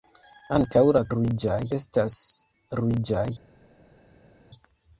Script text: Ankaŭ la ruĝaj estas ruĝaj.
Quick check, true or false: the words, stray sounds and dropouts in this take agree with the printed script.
true